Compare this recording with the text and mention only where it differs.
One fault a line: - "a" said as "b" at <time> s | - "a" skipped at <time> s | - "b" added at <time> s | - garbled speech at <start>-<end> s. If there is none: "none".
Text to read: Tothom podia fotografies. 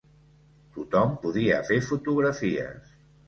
- "fer" added at 1.7 s